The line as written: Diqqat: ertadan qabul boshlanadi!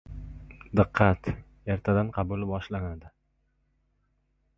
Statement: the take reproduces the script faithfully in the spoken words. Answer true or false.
true